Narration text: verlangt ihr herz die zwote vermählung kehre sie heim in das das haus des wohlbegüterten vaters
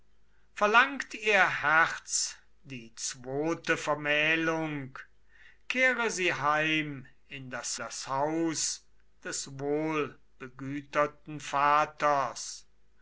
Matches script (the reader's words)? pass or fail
pass